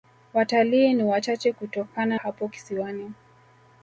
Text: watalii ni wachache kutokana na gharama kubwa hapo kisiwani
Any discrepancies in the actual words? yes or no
yes